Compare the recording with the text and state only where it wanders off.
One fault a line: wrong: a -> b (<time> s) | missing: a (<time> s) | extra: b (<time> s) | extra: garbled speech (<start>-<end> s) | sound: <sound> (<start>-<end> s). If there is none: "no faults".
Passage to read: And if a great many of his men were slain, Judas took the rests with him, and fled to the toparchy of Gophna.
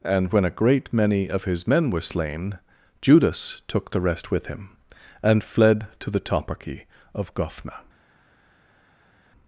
wrong: if -> when (0.3 s)
wrong: rests -> rest (4.0 s)